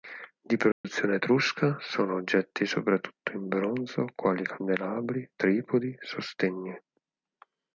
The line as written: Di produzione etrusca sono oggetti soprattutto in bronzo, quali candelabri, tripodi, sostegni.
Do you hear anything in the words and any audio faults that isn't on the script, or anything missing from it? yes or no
yes